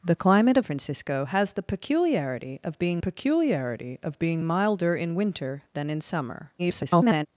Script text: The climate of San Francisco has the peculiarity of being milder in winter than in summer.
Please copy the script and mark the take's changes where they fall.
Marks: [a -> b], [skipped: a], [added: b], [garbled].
The climate of [skipped: San] Francisco has the peculiarity of being [added: peculiarity of being] milder in winter than in summer. [garbled]